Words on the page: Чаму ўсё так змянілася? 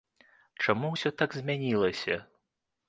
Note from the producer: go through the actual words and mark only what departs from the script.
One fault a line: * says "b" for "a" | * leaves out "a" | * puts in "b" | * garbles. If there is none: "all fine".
all fine